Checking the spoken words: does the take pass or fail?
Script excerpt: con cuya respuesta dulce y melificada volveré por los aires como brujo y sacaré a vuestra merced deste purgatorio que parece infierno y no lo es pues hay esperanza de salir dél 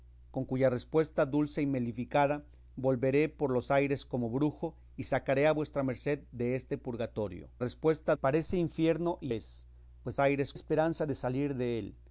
fail